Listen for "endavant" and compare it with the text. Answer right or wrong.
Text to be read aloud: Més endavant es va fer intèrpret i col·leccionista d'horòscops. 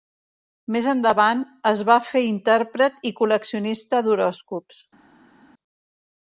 right